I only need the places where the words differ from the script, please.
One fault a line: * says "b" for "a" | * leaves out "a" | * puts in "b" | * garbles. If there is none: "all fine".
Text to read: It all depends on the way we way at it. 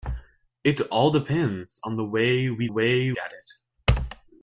all fine